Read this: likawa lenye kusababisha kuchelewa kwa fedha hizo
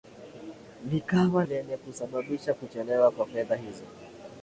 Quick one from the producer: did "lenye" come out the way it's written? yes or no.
yes